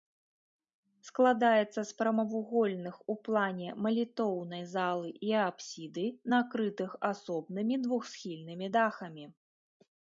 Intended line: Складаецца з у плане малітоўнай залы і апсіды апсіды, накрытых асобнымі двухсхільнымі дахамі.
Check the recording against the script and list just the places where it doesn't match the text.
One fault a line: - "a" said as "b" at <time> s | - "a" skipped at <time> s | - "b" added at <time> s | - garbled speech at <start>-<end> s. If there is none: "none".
- "прамавугольных" added at 2.0 s
- "апсіды" skipped at 6.0 s